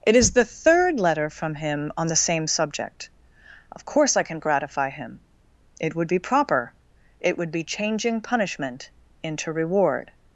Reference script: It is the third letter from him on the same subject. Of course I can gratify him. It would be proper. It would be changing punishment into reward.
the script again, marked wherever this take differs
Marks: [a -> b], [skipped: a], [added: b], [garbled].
It is the third letter from him on the same subject. Of course I can gratify him. It would be proper. It would be changing punishment into reward.